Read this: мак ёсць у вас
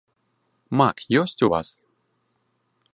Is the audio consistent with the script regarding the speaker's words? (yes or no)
yes